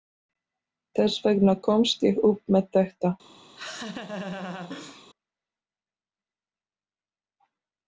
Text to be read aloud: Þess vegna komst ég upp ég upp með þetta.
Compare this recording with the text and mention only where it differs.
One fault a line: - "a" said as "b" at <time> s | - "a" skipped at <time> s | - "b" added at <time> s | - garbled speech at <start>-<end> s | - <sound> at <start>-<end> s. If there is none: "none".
- "ég upp" skipped at 2.5 s
- laugh at 3.6-5.1 s